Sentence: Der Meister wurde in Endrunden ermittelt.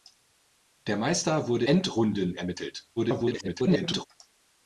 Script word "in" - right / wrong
wrong